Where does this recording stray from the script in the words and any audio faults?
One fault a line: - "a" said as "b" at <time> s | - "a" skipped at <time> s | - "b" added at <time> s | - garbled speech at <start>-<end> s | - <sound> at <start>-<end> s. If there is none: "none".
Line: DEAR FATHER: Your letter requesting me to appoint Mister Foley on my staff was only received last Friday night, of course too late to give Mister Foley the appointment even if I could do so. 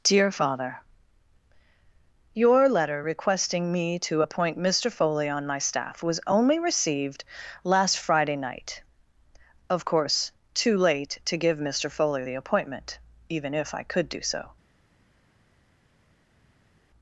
none